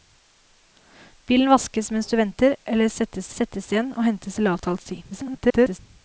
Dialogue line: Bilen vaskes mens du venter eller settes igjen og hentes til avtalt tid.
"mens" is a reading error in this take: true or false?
false